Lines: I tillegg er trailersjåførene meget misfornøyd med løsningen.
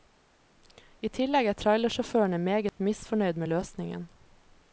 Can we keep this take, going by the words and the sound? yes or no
no